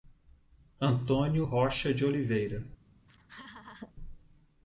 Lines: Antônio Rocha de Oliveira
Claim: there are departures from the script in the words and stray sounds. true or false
true